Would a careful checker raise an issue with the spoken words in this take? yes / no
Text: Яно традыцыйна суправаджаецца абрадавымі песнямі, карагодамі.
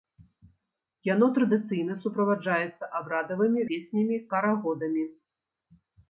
no